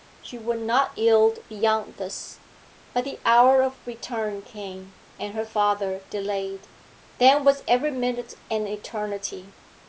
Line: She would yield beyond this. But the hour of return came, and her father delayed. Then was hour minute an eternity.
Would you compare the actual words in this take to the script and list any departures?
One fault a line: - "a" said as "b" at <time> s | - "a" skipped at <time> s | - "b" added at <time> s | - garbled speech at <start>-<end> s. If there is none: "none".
- "not" added at 0.6 s
- "hour" said as "every" at 7.7 s